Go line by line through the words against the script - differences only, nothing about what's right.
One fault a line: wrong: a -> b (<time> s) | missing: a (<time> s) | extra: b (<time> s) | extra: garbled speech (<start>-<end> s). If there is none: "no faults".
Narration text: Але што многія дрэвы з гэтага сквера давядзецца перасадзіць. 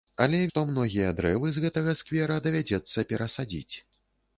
no faults